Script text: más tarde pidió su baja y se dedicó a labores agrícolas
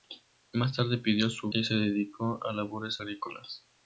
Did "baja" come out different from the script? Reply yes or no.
yes